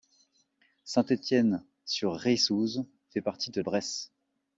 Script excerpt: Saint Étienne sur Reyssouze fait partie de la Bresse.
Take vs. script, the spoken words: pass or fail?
fail